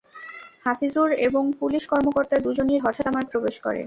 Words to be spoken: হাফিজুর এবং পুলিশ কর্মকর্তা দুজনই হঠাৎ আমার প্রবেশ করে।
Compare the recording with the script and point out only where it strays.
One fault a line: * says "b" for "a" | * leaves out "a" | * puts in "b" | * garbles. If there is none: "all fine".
all fine